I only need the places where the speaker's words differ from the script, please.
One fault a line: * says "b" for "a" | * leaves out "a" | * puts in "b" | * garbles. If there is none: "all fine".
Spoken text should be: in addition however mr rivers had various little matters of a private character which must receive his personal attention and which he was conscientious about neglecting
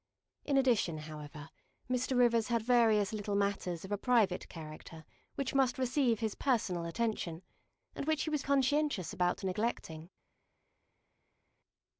all fine